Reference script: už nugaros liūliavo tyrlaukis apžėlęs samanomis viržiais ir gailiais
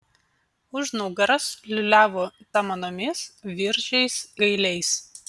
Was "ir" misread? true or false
true